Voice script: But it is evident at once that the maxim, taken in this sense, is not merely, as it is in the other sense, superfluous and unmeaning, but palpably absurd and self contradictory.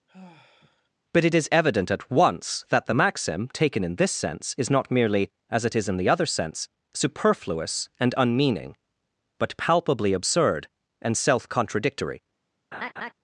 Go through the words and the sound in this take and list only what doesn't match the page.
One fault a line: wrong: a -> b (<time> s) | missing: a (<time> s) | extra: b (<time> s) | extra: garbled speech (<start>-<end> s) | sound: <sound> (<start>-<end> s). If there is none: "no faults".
sound: sigh (0.1-0.9 s)
sound: laugh (12.7-13.1 s)